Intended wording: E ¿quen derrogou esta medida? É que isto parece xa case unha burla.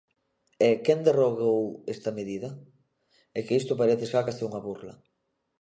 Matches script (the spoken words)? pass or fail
pass